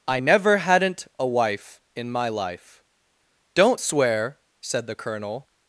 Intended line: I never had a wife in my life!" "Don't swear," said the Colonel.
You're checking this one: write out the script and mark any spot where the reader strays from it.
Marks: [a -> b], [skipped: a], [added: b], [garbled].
I never [had -> hadn't] a wife in my life!" "Don't swear," said the Colonel.